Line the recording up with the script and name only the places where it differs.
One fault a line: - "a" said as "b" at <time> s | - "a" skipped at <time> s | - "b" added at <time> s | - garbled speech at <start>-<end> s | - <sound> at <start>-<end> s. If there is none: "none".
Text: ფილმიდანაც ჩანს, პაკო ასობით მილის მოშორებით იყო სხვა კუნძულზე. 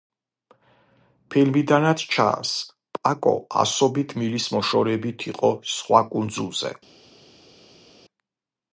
none